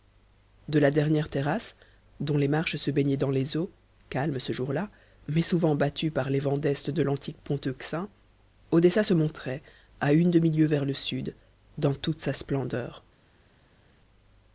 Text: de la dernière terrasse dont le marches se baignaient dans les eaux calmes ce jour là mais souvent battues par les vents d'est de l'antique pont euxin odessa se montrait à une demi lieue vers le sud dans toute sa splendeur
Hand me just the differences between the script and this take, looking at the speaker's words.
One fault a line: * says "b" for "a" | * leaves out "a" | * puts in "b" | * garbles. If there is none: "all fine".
* says "les" for "le"